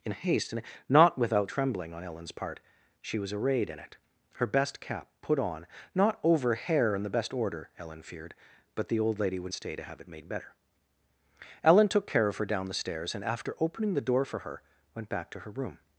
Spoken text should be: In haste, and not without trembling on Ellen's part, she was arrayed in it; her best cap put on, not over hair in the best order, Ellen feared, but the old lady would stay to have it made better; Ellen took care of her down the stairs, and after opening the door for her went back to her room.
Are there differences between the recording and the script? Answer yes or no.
no